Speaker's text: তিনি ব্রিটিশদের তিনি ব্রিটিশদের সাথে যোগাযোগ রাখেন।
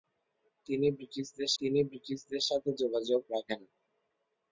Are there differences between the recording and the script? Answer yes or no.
no